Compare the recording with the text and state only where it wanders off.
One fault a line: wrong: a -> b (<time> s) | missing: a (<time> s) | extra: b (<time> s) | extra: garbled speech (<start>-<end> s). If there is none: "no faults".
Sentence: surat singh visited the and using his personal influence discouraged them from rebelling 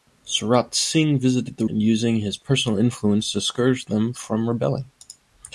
no faults